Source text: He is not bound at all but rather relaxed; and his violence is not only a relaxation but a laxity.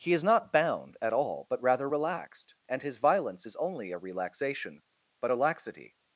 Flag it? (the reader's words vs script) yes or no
yes